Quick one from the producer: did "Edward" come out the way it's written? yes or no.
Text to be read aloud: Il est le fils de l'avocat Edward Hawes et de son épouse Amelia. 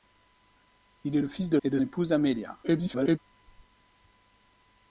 no